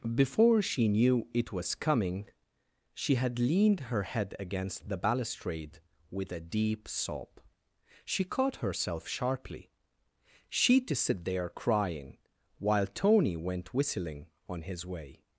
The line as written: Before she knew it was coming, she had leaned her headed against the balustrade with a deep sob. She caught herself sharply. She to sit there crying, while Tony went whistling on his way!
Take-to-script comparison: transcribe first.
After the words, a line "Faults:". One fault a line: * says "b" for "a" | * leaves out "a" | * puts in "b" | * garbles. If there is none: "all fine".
Before she knew it was coming, she had leaned her head against the balustrade with a deep sob. She caught herself sharply. She to sit there crying, while Tony went whistling on his way!
Faults:
* says "head" for "headed"